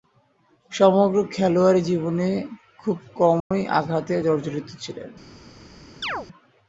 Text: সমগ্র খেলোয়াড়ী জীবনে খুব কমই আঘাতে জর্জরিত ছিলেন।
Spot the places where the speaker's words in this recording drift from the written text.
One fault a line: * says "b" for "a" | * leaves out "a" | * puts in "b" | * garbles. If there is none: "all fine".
all fine